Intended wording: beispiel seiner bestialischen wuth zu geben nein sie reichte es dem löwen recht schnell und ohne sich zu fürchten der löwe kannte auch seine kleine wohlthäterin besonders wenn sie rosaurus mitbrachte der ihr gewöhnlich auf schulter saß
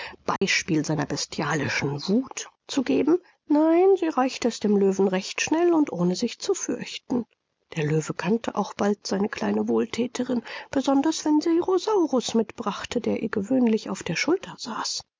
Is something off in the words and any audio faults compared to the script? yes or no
yes